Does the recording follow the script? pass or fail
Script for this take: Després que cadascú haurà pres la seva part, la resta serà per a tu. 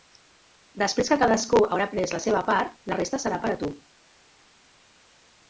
pass